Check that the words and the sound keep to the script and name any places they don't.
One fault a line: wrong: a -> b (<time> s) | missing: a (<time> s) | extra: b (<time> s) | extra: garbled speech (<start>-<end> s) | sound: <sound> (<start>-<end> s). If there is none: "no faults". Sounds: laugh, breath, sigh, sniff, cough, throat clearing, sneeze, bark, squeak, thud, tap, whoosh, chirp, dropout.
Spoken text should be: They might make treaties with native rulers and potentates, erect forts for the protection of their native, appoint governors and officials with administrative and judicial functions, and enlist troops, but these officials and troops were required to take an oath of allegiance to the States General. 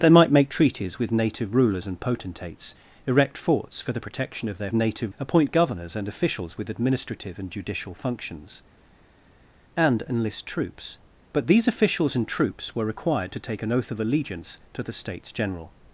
no faults